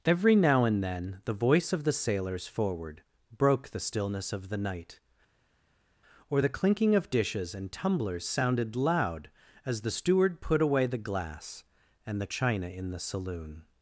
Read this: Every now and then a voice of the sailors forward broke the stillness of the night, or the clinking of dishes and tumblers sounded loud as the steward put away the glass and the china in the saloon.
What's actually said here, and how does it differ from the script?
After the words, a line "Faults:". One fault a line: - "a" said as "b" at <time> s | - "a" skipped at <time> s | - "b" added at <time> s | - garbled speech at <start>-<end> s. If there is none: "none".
Every now and then the voice of the sailors forward broke the stillness of the night, or the clinking of dishes and tumblers sounded loud as the steward put away the glass and the china in the saloon.
Faults:
- "a" said as "the" at 1.2 s